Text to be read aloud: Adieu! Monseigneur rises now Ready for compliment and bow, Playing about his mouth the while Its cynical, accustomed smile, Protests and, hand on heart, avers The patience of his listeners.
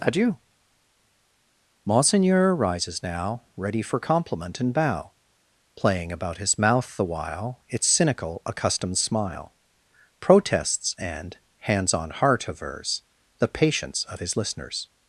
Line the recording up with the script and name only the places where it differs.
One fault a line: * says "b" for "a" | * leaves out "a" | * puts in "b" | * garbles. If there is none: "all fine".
* says "hands" for "hand"